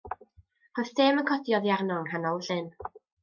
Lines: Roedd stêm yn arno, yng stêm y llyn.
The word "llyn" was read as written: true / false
true